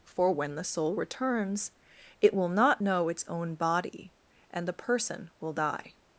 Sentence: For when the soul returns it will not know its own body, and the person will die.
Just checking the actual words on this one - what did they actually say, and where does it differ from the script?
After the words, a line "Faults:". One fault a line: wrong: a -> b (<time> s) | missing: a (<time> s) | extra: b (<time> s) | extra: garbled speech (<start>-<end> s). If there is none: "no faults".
For when the soul returns it will not know its own body, and the person will die.
Faults:
no faults